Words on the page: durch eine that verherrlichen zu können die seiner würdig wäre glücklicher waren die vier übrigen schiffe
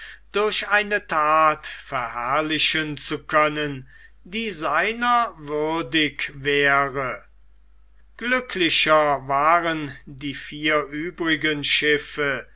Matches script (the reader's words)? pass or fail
pass